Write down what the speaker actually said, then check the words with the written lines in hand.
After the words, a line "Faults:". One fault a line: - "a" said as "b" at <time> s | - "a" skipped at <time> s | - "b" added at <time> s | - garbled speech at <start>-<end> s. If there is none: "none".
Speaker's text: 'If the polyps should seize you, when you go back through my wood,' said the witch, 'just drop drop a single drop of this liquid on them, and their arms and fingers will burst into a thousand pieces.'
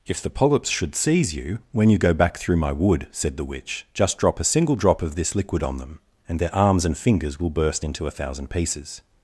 'If the polyps should seize you, when you go back through my wood,' said the witch, 'just drop a single drop of this liquid on them, and their arms and fingers will burst into a thousand pieces.'
Faults:
- "drop" skipped at 4.4 s